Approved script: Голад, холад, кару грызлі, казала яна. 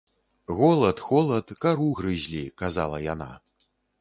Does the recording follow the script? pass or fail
pass